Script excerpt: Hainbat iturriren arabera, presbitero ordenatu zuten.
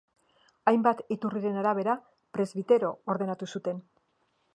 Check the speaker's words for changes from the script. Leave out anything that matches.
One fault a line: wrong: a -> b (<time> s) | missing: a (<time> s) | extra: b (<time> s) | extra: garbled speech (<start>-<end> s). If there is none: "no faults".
no faults